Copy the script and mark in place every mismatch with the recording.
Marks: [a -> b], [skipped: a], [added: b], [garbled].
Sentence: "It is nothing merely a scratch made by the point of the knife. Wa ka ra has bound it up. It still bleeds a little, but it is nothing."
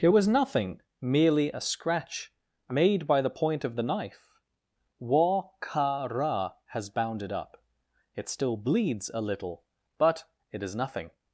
"It [is -> was] nothing merely a scratch made by the point of the knife. Wa ka ra has bound it up. It still bleeds a little, but it is nothing."